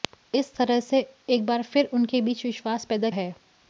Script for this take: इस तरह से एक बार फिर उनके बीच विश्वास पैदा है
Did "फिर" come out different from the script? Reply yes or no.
no